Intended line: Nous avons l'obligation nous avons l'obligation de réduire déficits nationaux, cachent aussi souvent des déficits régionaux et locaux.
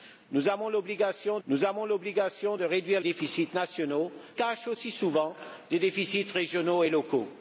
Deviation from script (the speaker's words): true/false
false